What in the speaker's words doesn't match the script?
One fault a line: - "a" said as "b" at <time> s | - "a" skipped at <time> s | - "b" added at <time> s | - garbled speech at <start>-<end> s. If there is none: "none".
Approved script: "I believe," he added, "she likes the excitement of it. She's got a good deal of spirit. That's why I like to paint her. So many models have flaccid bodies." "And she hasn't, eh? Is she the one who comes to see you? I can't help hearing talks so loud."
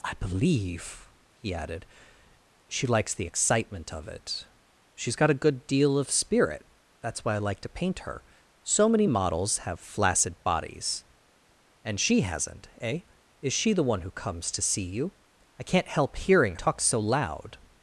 none